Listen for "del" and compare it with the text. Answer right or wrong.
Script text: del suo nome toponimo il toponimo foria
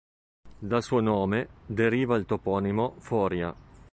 wrong